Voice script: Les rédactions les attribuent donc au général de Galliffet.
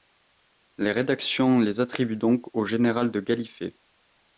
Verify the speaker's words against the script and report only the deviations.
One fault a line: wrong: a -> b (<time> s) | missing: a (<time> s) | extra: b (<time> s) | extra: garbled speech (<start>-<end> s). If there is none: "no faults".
no faults